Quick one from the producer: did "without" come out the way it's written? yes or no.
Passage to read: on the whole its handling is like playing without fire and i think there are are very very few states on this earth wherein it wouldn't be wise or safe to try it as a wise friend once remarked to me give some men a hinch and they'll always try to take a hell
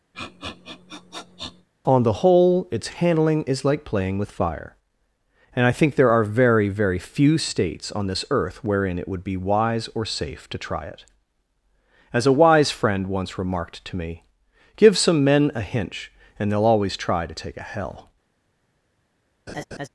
no